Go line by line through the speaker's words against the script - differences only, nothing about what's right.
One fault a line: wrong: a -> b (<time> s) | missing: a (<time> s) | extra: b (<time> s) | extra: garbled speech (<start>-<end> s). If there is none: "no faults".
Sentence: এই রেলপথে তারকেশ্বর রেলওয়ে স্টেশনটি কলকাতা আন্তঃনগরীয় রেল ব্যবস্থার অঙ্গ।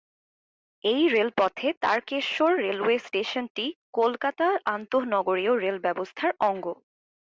no faults